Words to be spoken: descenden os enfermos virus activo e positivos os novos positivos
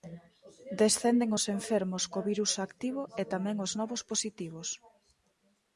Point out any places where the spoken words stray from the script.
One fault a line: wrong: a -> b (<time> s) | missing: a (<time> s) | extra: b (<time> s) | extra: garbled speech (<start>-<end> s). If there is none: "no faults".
extra: co (2.1 s)
wrong: positivos -> tamén (3.3 s)